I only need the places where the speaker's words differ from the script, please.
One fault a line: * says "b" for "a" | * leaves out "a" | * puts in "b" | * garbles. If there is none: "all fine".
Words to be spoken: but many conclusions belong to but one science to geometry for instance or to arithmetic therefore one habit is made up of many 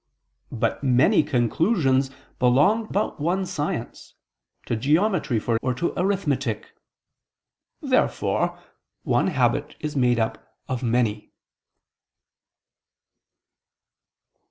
* leaves out "to"
* leaves out "instance"